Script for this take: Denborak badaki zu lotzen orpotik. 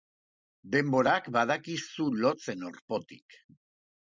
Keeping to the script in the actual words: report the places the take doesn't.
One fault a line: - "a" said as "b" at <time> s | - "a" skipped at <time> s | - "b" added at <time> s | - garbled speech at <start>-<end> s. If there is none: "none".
none